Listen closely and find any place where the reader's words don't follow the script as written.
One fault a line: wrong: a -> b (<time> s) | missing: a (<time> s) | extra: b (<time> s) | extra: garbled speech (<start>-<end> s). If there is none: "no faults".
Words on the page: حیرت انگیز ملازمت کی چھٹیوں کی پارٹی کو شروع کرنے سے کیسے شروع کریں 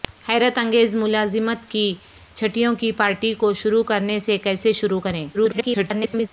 extra: garbled speech (5.3-6.3 s)